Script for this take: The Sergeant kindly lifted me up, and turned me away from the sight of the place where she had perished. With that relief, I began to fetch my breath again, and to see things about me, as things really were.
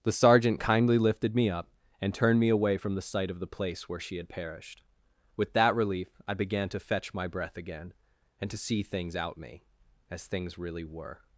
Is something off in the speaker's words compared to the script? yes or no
yes